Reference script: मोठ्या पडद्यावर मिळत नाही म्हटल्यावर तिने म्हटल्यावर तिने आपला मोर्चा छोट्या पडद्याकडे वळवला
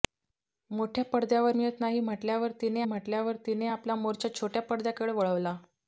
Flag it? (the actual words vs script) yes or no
no